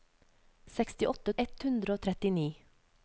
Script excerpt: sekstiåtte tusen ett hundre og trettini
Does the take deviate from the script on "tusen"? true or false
true